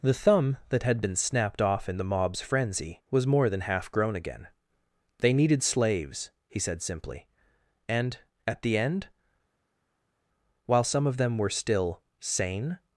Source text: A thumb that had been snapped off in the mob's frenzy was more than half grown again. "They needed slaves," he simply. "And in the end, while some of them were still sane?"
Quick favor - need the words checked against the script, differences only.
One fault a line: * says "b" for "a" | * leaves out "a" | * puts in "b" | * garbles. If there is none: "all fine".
* says "The" for "A"
* puts in "said"
* says "at" for "in"